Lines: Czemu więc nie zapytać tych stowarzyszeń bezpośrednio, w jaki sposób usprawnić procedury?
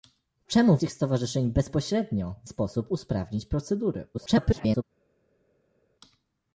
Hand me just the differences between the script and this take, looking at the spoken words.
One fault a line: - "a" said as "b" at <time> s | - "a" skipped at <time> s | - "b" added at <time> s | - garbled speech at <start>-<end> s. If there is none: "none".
- "więc nie zapytać" skipped at 0.8 s
- "jaki" skipped at 2.5 s
- garbled speech at 4.1-4.8 s